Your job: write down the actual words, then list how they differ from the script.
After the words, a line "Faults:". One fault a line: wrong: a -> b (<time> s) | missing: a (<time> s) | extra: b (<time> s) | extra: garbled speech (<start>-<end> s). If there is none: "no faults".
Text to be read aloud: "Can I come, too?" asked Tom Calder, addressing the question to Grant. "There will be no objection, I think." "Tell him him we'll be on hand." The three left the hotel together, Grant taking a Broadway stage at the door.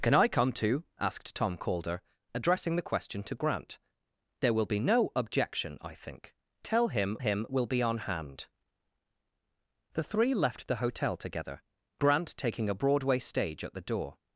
"Can I come, too?" asked Tom Calder, addressing the question to Grant. "There will be no objection, I think." "Tell him him we'll be on hand." The three left the hotel together, Grant taking a Broadway stage at the door.
Faults:
no faults